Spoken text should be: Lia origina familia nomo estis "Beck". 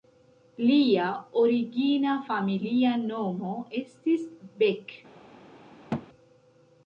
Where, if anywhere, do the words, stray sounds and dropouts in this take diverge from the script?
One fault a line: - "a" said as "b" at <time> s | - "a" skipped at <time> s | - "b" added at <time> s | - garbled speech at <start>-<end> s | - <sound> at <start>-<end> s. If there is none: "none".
- thud at 5.9-6.1 s